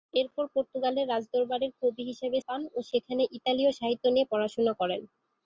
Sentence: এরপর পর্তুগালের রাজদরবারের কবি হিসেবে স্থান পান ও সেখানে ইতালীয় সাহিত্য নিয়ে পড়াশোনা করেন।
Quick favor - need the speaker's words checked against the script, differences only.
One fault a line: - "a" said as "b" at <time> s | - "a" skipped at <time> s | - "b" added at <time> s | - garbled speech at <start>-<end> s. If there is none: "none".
- "স্থান" skipped at 2.4 s